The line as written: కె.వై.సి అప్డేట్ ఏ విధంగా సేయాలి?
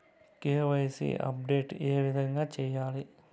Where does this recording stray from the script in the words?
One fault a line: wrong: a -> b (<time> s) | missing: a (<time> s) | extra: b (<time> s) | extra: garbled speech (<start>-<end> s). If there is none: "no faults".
no faults